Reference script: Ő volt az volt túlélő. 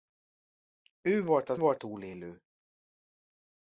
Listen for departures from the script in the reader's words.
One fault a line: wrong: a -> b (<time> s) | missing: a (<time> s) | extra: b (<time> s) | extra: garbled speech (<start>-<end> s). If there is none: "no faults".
no faults